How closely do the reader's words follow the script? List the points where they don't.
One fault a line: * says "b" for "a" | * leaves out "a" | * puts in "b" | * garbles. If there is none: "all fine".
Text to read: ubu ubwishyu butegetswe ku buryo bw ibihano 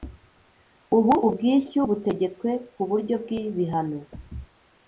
all fine